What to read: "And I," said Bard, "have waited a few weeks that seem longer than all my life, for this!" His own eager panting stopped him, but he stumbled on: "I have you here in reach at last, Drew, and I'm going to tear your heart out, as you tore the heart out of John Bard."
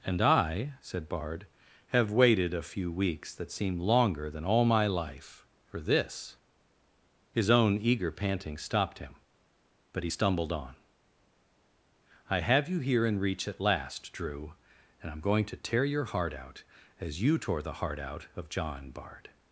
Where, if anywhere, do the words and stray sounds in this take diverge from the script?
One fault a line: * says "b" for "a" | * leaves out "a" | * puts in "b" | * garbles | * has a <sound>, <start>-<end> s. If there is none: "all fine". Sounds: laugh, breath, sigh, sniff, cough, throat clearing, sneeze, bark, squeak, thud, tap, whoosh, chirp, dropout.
all fine